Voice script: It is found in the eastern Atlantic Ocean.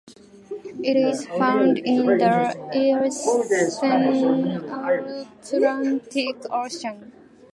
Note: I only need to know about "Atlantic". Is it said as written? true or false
true